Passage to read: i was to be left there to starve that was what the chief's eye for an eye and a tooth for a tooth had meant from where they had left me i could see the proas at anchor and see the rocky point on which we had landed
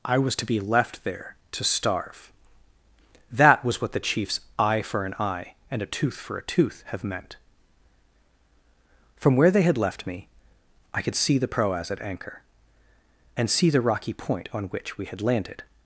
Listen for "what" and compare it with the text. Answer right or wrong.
right